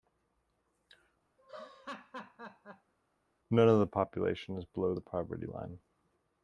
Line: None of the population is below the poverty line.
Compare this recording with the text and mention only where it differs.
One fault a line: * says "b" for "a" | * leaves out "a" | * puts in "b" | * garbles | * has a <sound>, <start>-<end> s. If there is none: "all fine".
* has a laugh, 1.4-2.9 s